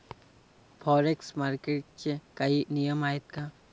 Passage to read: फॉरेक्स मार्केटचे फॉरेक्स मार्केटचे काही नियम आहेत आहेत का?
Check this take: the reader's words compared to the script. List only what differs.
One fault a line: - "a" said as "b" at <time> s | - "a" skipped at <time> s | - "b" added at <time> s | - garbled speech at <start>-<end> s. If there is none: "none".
- "फॉरेक्स मार्केटचे" skipped at 2.2 s
- "आहेत" skipped at 3.2 s